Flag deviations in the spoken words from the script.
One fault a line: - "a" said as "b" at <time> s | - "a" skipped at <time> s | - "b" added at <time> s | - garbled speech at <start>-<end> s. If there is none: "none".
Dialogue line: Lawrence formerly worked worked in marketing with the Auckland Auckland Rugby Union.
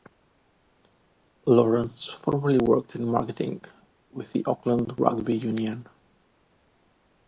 - "worked" skipped at 3.0 s
- "Auckland" skipped at 4.9 s